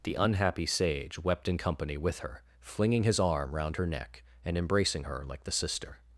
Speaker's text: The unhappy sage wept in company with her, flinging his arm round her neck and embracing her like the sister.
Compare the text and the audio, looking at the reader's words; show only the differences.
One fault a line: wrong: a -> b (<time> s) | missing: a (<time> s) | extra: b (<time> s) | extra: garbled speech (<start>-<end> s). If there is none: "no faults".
no faults